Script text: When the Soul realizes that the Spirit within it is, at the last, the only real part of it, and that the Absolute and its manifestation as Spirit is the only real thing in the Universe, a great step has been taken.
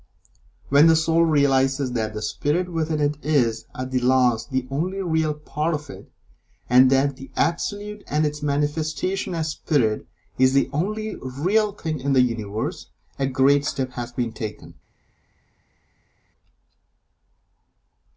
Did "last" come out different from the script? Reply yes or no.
no